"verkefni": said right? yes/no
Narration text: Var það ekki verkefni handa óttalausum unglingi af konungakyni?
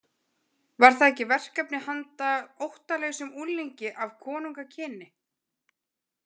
yes